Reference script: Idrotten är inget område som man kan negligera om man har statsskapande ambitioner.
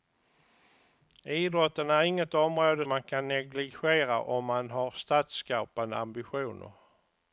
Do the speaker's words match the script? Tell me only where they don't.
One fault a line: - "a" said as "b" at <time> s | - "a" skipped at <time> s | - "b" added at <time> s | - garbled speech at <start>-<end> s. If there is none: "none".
- "som" skipped at 2.9 s